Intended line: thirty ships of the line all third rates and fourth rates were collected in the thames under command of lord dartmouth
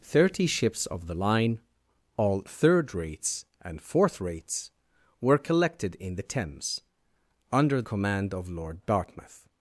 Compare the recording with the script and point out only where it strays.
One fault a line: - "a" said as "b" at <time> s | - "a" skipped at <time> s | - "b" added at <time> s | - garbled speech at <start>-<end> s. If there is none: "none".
none